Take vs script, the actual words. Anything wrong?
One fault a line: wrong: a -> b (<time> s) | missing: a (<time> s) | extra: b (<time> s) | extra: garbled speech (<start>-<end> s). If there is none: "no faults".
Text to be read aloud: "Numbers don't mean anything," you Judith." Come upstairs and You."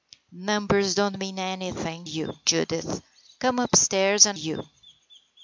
no faults